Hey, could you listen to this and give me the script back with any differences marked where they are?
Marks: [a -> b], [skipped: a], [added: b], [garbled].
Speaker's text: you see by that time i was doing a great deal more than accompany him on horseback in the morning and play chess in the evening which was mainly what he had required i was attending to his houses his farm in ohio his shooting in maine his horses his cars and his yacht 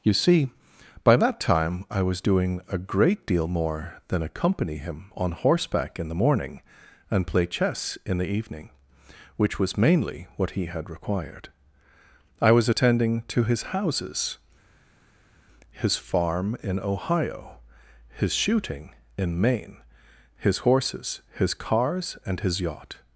you see by that time i was doing a great deal more than accompany him on horseback in the morning and play chess in the evening which was mainly what he had required i was attending to his houses his farm in ohio his shooting in maine his horses his cars and his yacht